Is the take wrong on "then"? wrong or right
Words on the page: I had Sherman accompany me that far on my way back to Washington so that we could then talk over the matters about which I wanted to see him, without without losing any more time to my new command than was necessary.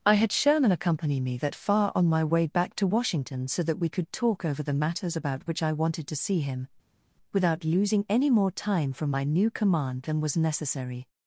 wrong